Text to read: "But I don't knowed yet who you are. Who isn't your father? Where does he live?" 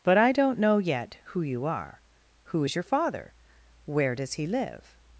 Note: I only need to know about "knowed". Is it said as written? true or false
false